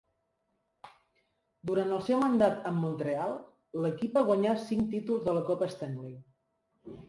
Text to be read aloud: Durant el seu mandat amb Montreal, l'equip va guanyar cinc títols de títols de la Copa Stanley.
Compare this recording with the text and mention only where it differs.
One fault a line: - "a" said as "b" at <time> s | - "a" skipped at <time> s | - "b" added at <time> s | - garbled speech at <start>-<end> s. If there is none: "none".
- "títols de" skipped at 5.4 s